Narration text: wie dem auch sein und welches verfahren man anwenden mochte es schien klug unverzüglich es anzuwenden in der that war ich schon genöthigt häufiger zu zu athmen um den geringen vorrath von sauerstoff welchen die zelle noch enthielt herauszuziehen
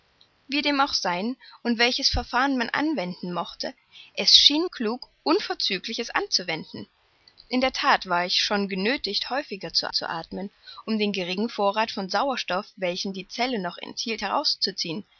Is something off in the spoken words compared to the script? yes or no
no